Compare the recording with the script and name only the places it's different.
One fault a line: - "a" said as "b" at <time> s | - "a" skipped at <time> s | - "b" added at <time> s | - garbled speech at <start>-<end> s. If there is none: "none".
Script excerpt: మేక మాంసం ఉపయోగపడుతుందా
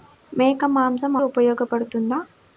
none